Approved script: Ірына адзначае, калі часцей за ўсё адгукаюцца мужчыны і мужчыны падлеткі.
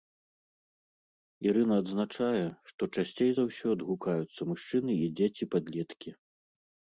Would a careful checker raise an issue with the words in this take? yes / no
yes